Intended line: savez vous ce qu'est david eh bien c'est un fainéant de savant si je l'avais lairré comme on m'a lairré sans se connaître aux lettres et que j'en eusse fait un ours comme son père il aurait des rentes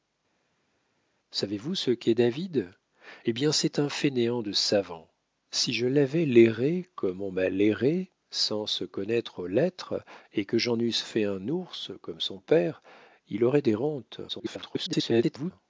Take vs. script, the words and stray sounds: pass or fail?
fail